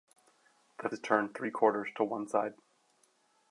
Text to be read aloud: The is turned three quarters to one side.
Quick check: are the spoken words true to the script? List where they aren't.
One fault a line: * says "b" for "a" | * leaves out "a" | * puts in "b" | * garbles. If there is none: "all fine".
all fine